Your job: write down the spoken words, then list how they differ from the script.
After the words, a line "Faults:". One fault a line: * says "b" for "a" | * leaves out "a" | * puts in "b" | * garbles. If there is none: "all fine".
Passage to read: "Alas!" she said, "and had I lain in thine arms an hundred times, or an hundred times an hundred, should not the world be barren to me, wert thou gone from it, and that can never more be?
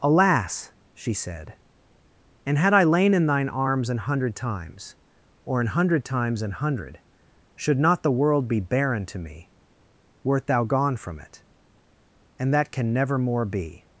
"Alas!" she said, "and had I lain in thine arms an hundred times, or an hundred times an hundred, should not the world be barren to me, wert thou gone from it, and that can never more be?
Faults:
all fine